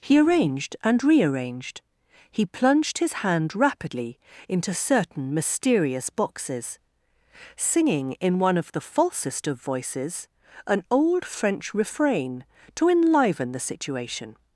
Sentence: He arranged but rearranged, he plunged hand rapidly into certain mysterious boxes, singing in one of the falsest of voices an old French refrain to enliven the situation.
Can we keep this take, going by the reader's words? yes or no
no